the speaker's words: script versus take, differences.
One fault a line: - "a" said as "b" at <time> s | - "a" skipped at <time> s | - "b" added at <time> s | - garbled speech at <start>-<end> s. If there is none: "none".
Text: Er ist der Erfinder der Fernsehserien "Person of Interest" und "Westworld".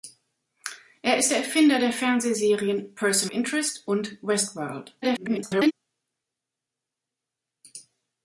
- "of" skipped at 3.3 s
- garbled speech at 5.0-5.7 s